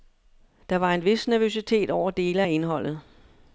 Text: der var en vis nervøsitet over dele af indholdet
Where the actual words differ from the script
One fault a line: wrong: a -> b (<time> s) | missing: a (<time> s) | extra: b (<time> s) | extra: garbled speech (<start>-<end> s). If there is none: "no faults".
no faults